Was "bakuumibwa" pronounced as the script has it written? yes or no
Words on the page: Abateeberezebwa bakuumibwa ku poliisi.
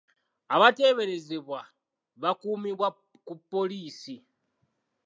yes